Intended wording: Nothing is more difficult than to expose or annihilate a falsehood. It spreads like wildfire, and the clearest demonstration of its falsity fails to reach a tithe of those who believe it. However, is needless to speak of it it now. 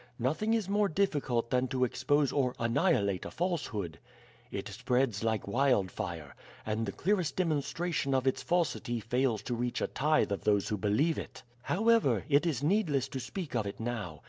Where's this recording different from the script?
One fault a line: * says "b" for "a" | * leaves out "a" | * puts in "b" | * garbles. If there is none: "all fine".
* puts in "it"
* leaves out "it"